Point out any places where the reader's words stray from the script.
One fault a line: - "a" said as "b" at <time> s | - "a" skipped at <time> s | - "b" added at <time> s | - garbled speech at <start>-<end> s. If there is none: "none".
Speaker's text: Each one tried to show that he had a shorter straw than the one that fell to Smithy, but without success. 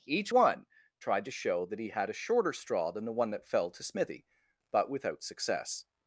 none